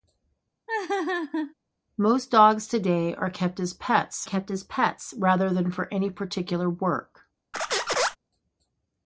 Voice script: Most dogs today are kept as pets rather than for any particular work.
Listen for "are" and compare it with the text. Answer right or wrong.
right